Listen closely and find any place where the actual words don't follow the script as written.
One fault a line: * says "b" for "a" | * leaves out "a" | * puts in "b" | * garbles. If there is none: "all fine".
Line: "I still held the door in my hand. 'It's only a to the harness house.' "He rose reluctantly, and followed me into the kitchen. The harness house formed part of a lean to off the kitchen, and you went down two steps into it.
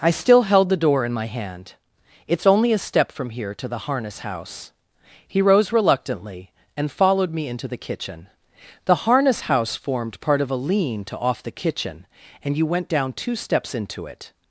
* puts in "step from here"